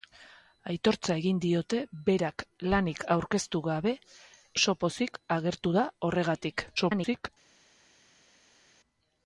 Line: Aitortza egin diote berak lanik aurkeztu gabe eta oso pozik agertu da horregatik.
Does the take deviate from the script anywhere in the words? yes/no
yes